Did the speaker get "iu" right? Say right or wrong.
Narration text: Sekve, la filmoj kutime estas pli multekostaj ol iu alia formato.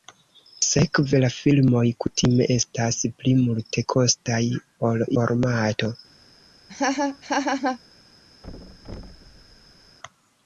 wrong